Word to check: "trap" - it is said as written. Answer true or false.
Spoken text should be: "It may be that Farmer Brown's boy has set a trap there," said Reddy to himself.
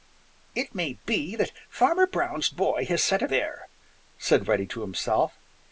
false